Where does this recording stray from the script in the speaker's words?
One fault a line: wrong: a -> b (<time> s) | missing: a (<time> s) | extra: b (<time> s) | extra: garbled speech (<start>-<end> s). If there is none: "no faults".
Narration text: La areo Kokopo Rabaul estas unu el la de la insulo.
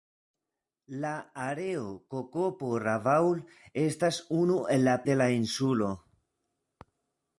no faults